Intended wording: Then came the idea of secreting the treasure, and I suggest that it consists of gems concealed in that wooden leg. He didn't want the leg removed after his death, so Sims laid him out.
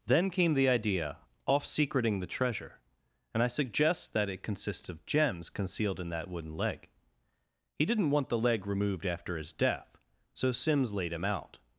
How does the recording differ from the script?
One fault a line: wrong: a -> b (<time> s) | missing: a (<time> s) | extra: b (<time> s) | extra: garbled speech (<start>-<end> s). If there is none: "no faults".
wrong: of -> off (1.5 s)